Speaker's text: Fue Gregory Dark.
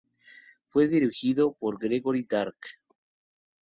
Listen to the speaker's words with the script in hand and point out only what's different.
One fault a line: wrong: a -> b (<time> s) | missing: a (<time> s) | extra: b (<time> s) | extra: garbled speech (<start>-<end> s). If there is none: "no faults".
extra: dirigido por (0.9 s)